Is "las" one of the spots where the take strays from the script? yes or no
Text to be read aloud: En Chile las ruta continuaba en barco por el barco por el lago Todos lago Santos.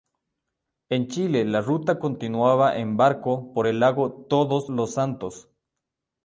yes